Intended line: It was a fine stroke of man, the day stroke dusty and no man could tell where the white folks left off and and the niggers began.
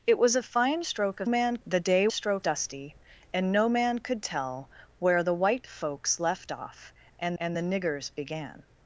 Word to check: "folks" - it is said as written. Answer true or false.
true